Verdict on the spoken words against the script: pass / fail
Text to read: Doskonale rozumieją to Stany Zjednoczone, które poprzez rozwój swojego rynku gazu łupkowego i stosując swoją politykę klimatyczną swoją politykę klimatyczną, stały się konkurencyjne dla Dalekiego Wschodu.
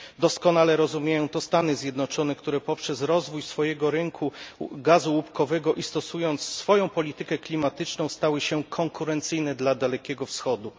fail